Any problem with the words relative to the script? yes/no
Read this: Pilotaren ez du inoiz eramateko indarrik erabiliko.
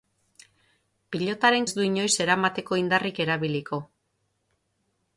no